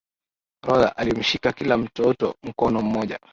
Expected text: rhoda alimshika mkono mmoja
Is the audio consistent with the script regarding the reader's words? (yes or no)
no